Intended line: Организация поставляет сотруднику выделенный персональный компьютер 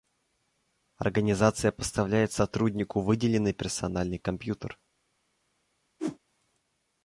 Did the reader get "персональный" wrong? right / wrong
right